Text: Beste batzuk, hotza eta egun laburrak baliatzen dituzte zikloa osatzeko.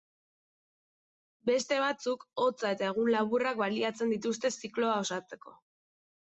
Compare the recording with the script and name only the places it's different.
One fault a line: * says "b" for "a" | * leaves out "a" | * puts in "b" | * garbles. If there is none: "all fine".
all fine